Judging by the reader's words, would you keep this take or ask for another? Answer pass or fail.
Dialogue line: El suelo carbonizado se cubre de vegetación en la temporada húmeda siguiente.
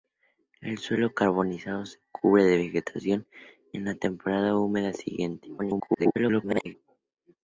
fail